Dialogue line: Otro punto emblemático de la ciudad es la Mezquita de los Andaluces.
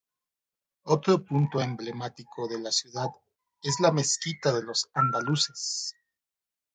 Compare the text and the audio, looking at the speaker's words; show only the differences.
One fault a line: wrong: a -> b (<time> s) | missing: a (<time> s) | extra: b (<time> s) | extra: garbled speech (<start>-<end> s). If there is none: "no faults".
no faults